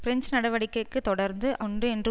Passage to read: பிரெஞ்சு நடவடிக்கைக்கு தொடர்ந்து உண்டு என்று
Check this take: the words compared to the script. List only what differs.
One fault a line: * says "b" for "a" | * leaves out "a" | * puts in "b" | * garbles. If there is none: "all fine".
all fine